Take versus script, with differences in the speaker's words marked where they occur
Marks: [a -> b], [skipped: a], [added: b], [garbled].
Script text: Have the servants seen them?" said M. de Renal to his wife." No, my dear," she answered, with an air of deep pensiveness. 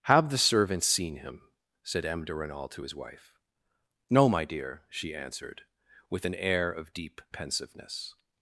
Have the servants seen [them?" -> him] said M. de Renal to his wife." No, my dear," she answered, with an air of deep pensiveness.